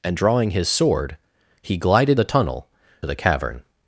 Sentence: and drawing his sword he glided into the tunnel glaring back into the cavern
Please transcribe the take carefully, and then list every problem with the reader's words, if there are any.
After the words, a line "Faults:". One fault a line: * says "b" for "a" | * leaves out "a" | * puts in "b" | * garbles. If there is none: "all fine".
and drawing his sword he glided the tunnel the cavern
Faults:
* leaves out "into"
* leaves out "glaring back into"